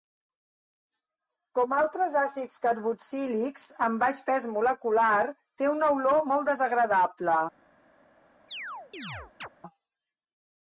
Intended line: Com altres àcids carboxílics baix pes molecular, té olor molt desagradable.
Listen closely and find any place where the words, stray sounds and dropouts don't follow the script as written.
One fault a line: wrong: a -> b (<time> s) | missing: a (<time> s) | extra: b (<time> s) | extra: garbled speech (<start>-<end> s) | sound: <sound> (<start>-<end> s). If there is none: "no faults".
extra: amb (3.9 s)
extra: una (5.8 s)
sound: chirp (8.5-9.5 s)